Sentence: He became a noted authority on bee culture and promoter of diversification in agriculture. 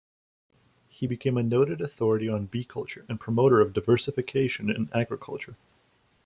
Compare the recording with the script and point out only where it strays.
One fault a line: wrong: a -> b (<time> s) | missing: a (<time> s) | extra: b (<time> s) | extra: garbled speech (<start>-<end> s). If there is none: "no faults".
no faults